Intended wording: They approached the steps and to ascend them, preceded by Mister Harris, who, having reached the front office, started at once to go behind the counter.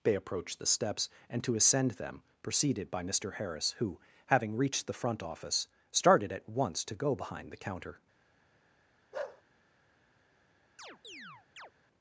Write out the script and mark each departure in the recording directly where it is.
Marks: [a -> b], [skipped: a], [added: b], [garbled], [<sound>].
They approached the steps and to ascend them, preceded by Mister Harris, who, having reached the front office, started at once to go behind the counter. [bark] [chirp]